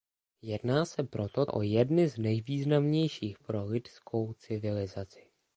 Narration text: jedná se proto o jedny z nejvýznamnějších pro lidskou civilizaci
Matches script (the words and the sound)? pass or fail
pass